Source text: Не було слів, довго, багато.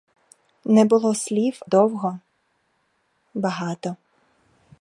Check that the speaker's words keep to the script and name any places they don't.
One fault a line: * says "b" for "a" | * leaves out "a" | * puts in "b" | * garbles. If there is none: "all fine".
all fine